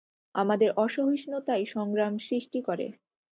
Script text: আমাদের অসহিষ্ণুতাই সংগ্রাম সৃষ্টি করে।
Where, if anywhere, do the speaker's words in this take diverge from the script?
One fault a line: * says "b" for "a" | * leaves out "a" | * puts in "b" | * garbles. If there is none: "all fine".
all fine